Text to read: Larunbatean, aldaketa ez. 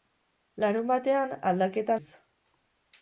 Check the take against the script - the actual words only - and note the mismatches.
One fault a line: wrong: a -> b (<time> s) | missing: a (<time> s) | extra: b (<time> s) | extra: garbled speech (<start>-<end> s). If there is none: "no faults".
no faults